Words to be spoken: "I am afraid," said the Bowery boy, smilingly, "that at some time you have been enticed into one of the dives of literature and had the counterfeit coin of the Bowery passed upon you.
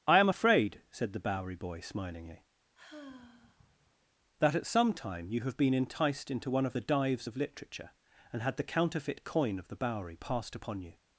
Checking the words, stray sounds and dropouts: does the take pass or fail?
fail